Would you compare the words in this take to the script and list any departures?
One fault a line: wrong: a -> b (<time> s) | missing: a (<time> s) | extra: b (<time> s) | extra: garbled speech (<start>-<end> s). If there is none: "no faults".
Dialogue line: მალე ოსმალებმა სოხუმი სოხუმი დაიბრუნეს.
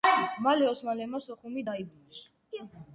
missing: სოხუმი (1.7 s)